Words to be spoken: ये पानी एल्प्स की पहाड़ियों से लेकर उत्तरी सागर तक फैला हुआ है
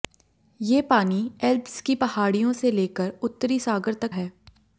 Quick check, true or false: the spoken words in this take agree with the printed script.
false